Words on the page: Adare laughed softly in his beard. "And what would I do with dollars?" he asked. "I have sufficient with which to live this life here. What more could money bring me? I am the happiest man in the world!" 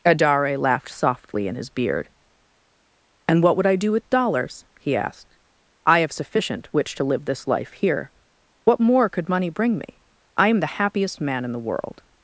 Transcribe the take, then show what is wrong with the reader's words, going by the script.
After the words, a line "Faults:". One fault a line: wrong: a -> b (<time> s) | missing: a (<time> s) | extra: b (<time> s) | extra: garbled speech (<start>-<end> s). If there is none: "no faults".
Adare laughed softly in his beard. "And what would I do with dollars?" he asked. "I have sufficient which to live this life here. What more could money bring me? I am the happiest man in the world!"
Faults:
missing: with (6.7 s)